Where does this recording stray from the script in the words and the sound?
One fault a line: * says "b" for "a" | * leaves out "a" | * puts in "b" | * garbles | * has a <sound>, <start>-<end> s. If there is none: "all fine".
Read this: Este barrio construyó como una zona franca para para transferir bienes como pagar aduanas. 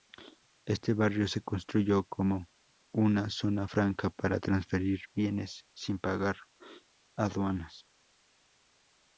* puts in "se"
* leaves out "para"
* says "sin" for "como"